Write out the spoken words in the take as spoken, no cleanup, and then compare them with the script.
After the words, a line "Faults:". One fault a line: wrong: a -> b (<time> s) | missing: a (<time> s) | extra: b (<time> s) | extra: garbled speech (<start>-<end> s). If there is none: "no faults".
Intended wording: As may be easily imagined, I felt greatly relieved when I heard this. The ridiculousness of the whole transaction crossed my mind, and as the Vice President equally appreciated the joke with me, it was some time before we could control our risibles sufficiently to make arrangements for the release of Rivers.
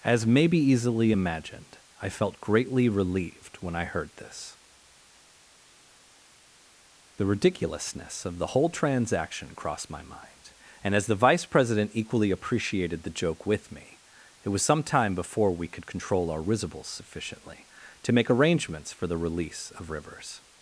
As may be easily imagined, I felt greatly relieved when I heard this. The ridiculousness of the whole transaction crossed my mind, and as the Vice President equally appreciated the joke with me, it was some time before we could control our risibles sufficiently to make arrangements for the release of Rivers.
Faults:
no faults